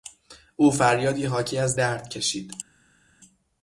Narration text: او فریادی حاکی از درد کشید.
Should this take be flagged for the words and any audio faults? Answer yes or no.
no